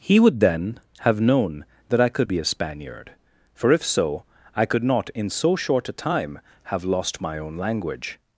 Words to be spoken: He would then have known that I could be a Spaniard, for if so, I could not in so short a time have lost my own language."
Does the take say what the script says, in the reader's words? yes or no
yes